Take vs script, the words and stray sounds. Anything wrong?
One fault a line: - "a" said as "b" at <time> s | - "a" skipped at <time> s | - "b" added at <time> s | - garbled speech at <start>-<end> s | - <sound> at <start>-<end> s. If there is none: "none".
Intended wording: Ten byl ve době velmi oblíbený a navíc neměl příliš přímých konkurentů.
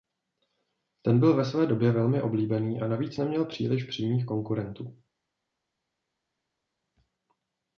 - "své" added at 1.4 s